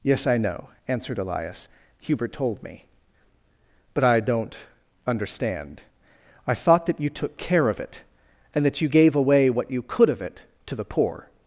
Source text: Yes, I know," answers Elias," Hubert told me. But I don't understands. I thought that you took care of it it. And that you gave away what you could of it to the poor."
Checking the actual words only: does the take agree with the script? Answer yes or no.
no